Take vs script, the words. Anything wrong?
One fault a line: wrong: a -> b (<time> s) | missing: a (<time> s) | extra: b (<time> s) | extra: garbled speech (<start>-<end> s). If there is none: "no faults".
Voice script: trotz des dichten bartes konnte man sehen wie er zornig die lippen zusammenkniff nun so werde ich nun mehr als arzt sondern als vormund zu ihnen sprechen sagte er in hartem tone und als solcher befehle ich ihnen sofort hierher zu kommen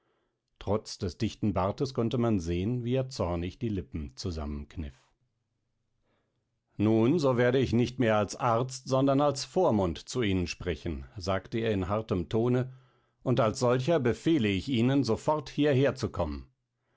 wrong: nun -> nicht (7.7 s)